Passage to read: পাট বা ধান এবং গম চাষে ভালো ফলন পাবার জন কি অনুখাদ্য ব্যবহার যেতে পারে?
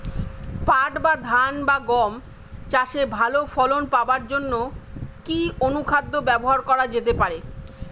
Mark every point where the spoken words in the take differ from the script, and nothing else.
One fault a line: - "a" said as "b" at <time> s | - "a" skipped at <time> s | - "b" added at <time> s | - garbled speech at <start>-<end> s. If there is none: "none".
- "এবং" said as "বা" at 1.7 s
- "করা" added at 6.7 s